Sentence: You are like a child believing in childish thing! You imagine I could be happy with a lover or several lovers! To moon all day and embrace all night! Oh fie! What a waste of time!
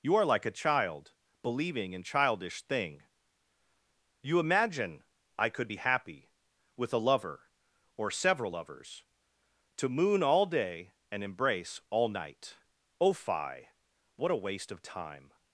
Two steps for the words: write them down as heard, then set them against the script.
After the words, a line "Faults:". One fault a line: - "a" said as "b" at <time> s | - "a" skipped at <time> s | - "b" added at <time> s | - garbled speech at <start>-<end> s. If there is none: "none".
You are like a child believing in childish thing! You imagine I could be happy with a lover or several lovers! To moon all day and embrace all night! Oh fie! What a waste of time!
Faults:
none